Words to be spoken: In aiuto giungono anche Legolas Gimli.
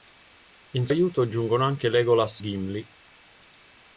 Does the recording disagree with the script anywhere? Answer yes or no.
no